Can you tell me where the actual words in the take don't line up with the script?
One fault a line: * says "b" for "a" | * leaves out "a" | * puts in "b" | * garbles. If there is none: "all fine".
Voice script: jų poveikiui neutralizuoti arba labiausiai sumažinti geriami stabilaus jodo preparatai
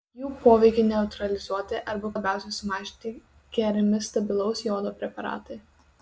all fine